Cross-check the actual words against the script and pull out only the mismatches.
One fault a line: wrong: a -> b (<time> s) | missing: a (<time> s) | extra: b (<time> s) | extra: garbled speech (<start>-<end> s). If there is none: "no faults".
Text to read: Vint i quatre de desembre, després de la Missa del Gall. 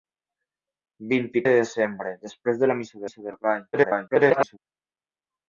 missing: quatre (1.4 s)
extra: Missa (3.1 s)
extra: garbled speech (3.7-4.6 s)